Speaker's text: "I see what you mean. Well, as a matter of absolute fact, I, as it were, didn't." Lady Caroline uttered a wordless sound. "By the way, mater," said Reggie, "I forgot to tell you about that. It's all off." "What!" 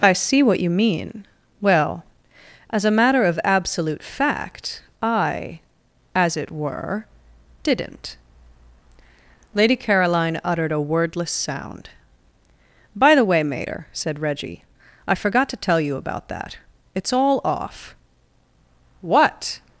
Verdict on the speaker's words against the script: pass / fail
pass